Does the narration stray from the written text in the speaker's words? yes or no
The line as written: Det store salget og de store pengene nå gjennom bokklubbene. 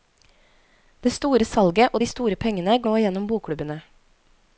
no